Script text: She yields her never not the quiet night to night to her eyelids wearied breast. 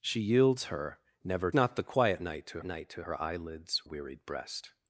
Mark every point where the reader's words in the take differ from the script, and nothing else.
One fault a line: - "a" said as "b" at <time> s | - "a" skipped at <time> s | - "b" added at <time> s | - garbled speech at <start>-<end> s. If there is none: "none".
none